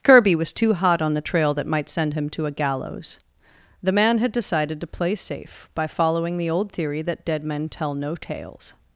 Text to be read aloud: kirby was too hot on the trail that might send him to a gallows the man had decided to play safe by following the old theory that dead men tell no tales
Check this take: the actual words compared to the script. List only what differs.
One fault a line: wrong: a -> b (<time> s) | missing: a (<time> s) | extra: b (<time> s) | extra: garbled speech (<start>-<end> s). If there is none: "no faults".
no faults